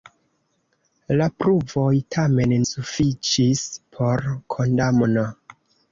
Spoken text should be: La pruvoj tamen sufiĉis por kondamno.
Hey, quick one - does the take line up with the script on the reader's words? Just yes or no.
yes